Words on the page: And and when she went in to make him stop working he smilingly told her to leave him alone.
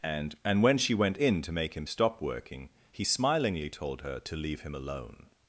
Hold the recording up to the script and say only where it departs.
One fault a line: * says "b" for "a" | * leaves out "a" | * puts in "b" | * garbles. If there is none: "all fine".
all fine